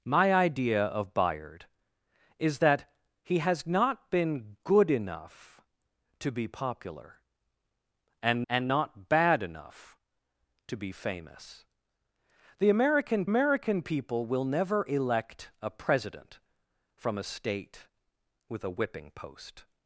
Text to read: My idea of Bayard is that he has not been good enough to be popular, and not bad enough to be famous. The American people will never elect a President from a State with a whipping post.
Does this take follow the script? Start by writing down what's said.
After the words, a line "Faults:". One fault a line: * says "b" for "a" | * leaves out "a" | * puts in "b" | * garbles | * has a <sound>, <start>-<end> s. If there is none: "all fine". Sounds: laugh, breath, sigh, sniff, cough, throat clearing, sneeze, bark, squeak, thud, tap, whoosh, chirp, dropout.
My idea of Bayard is that he has not been good enough to be popular, and and not bad enough to be famous. The American American people will never elect a President from a State with a whipping post.
Faults:
* puts in "and"
* puts in "American"